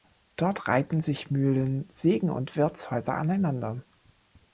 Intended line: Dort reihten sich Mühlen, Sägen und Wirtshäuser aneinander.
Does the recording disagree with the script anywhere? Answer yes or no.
no